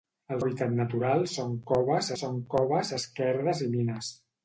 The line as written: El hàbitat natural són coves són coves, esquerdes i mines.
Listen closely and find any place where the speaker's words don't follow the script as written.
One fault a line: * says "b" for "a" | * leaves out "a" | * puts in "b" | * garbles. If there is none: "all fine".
all fine